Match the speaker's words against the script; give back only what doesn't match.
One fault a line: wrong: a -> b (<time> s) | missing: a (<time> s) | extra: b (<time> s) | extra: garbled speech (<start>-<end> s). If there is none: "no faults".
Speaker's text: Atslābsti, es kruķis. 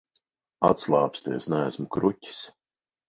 extra: neesmu (1.6 s)